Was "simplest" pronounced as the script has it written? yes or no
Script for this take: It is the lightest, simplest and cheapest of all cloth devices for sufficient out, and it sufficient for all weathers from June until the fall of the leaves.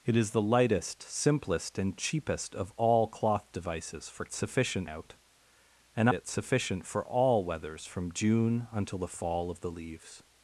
yes